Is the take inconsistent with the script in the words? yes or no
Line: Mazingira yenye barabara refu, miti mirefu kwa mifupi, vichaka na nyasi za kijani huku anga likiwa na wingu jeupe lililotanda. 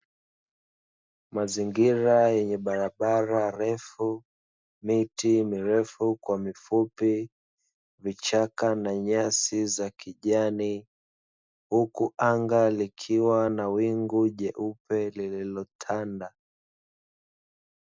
no